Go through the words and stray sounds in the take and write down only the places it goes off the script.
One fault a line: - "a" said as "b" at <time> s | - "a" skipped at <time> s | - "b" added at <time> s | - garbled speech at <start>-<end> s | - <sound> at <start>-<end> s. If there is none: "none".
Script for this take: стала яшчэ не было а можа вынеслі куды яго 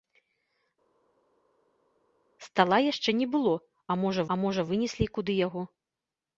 - "а можа" added at 4.3 s